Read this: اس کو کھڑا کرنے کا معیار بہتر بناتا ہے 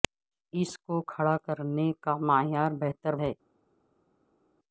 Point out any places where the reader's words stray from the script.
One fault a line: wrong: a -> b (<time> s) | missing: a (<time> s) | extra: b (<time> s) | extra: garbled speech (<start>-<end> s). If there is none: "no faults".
missing: بناتا (3.1 s)